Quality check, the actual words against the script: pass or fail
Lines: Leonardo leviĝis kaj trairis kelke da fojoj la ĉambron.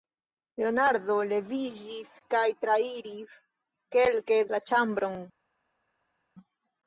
fail